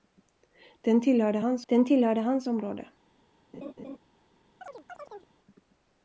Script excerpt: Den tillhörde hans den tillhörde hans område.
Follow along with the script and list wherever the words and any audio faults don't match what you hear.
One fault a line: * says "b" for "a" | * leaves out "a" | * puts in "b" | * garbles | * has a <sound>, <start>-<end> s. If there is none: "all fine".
* has a laugh, 3.5-4.0 s
* has a chirp, 4.6-5.3 s